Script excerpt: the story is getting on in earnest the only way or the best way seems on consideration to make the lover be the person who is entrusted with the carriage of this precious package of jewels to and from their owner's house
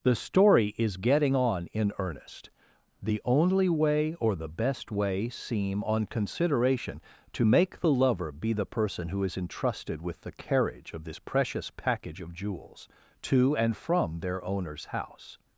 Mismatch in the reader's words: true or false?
true